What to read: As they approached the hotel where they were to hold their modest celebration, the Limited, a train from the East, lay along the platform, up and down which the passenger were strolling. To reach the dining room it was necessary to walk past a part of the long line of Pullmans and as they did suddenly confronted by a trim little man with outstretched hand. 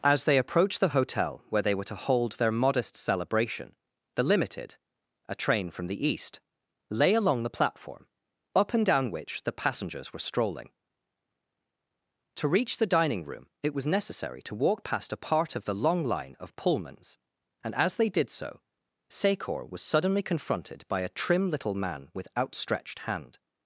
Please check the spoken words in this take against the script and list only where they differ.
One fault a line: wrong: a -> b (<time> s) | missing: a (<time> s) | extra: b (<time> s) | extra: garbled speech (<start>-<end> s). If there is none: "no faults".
wrong: passenger -> passengers (9.5 s)
extra: so Secor was (18.3 s)